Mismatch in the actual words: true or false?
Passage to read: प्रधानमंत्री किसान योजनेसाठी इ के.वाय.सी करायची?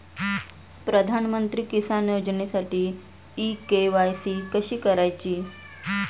true